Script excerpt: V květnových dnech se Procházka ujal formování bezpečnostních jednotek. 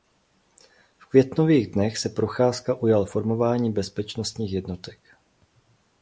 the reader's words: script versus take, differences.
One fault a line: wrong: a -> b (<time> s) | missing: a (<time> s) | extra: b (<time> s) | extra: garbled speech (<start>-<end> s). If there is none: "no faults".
no faults